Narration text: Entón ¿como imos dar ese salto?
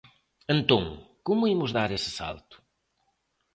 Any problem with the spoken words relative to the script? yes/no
no